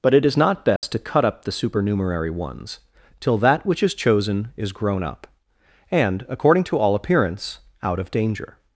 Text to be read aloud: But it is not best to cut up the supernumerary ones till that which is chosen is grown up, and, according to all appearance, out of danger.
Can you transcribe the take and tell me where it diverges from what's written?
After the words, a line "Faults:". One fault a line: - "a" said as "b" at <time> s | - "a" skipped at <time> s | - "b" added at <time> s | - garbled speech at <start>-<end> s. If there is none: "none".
But it is not best to cut up the supernumerary ones till that which is chosen is grown up, and, according to all appearance, out of danger.
Faults:
none